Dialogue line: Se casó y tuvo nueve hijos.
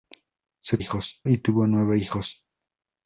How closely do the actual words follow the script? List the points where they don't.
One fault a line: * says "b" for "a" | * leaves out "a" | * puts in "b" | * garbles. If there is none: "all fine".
* says "hijos" for "casó"